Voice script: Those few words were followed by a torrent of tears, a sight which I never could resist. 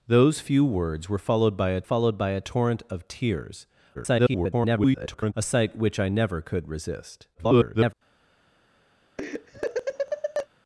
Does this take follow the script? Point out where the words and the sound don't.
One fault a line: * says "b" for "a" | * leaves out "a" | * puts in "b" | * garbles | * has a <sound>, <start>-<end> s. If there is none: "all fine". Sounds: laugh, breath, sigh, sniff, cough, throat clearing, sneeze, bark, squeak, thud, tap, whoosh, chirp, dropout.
* puts in "followed by a"
* garbles
* garbles
* has a laugh, 9.2-10.5 s